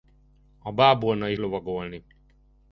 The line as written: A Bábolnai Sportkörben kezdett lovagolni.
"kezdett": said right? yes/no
no